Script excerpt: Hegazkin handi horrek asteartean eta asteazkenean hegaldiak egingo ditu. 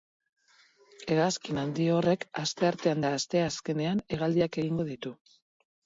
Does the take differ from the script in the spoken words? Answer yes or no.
no